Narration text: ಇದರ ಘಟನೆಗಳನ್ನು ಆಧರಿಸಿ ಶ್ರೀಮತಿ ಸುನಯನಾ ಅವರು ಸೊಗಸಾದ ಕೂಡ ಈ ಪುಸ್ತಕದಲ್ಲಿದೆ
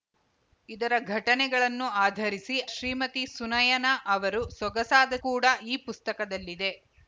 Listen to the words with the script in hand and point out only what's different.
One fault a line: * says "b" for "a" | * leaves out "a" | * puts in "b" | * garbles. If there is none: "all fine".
all fine